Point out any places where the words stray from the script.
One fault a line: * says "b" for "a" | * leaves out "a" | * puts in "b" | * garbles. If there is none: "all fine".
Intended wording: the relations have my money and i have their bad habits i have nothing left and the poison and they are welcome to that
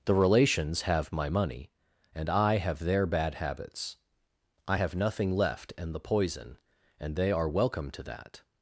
all fine